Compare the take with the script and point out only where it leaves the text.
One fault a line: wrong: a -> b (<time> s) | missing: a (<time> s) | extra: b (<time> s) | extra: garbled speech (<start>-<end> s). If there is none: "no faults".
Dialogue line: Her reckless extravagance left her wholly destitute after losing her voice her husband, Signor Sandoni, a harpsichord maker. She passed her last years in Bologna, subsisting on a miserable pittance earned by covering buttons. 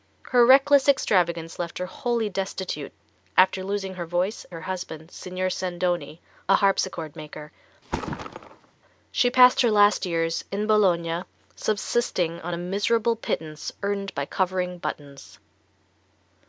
no faults